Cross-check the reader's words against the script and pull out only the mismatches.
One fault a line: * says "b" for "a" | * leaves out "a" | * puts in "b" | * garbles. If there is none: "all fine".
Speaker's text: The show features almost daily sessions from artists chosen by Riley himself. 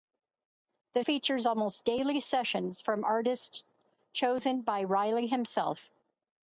* leaves out "show"